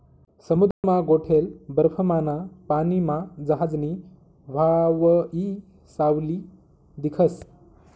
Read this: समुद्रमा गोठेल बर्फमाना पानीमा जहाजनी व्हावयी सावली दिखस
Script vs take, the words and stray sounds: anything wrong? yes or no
yes